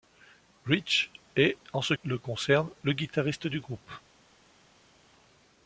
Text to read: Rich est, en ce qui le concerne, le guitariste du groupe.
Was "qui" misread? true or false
true